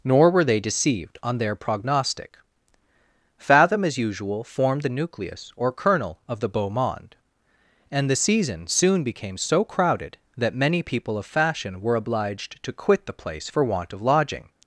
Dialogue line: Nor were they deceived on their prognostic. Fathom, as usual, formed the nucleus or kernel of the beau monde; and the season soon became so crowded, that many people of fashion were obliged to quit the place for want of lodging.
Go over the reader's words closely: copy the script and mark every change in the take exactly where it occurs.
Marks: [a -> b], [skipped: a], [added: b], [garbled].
Nor were they deceived on their prognostic. Fathom, as usual, formed the nucleus or kernel of the beau monde; and the season soon became so crowded, that many people of fashion were obliged to quit the place for want of lodging.